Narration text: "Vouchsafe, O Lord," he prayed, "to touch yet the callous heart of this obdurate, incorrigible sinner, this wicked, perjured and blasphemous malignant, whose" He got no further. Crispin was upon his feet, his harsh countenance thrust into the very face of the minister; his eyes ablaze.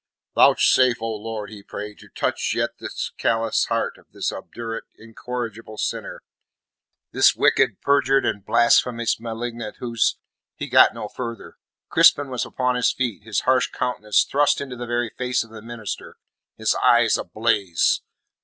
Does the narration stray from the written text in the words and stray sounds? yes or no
no